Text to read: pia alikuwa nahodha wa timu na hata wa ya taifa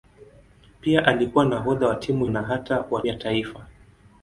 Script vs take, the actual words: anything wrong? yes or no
no